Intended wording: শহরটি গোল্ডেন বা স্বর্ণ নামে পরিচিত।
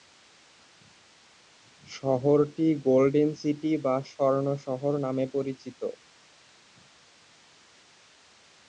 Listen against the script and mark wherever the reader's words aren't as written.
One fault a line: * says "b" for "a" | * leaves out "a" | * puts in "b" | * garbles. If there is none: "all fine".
* puts in "সিটি"
* puts in "শহর"